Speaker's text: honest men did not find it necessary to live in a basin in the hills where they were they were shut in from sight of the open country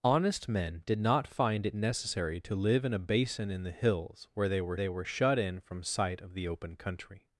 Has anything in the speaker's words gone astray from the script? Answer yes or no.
no